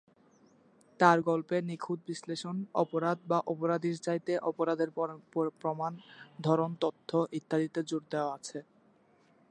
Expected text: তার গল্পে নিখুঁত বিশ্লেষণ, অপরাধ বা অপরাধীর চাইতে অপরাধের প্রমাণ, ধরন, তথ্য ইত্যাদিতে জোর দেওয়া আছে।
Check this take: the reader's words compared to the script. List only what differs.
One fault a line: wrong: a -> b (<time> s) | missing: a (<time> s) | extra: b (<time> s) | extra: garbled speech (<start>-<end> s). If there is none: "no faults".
no faults